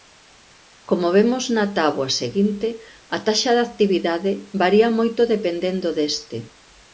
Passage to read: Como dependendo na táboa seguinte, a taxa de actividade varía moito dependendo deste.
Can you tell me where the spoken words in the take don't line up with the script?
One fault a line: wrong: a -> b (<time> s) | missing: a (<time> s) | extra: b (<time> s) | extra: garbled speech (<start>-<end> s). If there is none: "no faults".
wrong: dependendo -> vemos (1.2 s)